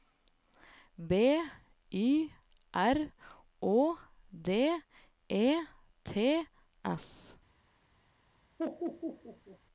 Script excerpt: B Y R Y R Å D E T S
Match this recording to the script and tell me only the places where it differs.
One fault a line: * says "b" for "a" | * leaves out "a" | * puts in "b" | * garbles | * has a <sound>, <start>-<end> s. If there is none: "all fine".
* leaves out "Y R"
* has a laugh, 8.6-9.6 s